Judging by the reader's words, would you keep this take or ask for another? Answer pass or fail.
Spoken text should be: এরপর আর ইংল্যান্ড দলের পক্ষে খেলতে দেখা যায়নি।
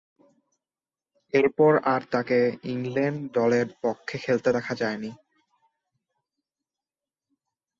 fail